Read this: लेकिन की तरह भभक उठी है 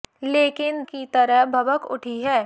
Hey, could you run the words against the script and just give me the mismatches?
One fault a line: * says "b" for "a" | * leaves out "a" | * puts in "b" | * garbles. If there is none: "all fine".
all fine